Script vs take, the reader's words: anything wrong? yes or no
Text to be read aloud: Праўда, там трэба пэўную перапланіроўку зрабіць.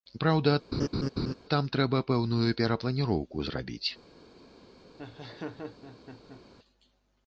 no